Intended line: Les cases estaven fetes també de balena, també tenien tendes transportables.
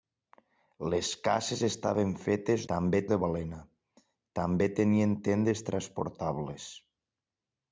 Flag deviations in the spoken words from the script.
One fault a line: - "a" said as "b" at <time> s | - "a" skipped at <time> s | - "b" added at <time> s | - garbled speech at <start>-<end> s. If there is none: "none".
none